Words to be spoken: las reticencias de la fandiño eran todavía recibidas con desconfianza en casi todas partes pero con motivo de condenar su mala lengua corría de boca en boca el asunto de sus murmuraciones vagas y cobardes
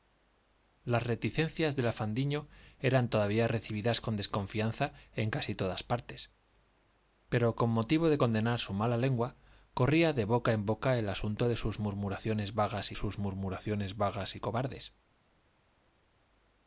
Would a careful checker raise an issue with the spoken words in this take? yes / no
yes